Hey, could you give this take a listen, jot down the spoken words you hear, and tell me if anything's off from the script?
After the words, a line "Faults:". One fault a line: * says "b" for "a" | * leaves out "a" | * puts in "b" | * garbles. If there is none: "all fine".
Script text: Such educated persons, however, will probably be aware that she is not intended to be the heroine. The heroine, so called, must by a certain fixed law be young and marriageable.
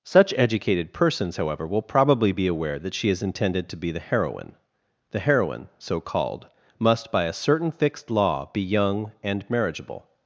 Such educated persons, however, will probably be aware that she is intended to be the heroine. The heroine, so called, must by a certain fixed law be young and marriageable.
Faults:
* leaves out "not"